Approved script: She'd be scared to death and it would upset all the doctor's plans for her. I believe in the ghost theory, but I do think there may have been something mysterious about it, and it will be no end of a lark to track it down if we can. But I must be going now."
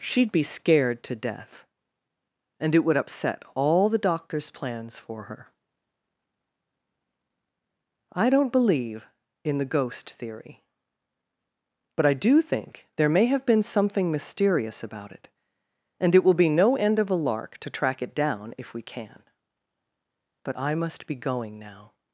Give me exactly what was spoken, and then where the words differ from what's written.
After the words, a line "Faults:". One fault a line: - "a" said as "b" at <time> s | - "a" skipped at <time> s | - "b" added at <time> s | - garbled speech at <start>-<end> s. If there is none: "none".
She'd be scared to death and it would upset all the doctor's plans for her. I don't believe in the ghost theory, but I do think there may have been something mysterious about it, and it will be no end of a lark to track it down if we can. But I must be going now."
Faults:
- "don't" added at 8.3 s